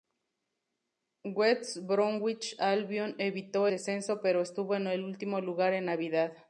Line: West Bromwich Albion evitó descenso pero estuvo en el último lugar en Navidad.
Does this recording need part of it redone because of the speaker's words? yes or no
no